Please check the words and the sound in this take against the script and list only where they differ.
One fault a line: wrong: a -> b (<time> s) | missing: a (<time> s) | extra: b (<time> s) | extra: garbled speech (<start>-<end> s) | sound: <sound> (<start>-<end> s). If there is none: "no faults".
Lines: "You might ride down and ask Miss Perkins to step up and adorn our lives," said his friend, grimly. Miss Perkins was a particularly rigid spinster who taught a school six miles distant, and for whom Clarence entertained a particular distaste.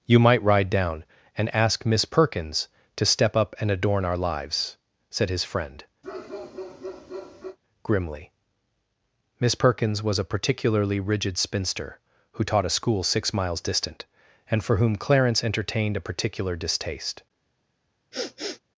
sound: bark (6.0-7.6 s)
sound: sniff (18.1-18.6 s)